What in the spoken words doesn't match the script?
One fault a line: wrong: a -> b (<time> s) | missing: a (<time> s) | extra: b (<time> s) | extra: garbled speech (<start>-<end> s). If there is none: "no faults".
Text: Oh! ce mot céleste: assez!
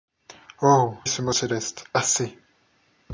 no faults